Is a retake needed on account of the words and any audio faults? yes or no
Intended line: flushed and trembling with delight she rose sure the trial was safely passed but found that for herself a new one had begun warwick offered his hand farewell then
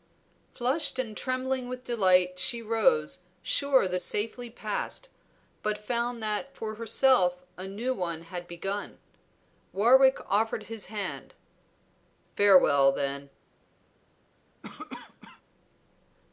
yes